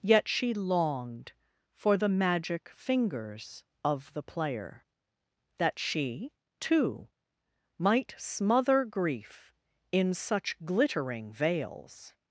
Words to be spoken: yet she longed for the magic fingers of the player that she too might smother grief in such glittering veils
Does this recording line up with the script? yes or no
yes